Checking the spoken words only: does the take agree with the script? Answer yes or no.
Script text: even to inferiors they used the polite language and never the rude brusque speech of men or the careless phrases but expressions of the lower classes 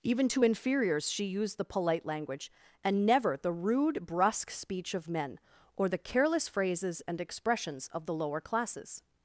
no